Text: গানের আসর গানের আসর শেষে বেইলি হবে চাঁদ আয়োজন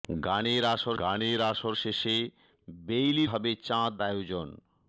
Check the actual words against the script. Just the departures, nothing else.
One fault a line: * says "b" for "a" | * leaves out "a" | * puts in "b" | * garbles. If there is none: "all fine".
all fine